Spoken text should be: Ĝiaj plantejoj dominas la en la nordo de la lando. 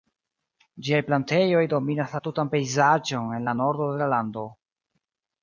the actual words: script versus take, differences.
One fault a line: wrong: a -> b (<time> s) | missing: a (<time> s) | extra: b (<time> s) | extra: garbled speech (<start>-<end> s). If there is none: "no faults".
extra: tutan pejzaĝon (2.3 s)